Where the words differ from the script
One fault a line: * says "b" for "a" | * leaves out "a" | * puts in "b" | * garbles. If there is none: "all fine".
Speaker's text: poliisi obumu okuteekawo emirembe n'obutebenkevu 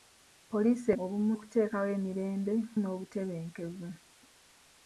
all fine